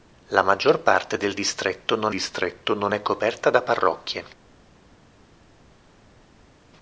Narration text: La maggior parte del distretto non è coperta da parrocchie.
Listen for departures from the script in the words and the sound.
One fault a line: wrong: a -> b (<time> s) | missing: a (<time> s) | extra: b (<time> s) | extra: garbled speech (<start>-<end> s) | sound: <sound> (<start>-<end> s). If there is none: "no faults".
extra: distretto non (2.1 s)